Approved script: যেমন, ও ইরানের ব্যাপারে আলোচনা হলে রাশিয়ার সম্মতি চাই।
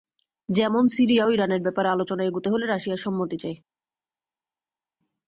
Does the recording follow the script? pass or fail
fail